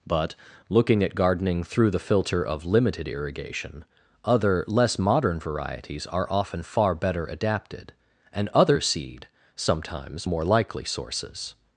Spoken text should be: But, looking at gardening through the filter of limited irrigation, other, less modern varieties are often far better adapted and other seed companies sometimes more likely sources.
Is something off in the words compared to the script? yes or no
yes